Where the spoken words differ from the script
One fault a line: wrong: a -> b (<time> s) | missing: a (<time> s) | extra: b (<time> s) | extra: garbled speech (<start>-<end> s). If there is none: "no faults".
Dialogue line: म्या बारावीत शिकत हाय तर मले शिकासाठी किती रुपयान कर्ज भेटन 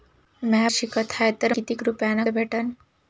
missing: बारावीत (0.7 s)
missing: मले शिकासाठी (1.5 s)
missing: कर्ज (2.2 s)